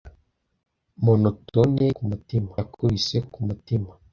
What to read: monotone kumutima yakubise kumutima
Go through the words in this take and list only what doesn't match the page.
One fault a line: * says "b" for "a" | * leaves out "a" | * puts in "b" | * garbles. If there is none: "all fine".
all fine